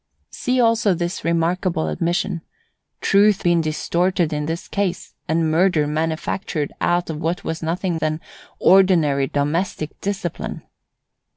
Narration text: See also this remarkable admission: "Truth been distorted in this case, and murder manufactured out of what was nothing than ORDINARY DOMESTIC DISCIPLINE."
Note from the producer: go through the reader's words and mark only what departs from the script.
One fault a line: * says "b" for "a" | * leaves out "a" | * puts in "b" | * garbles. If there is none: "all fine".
all fine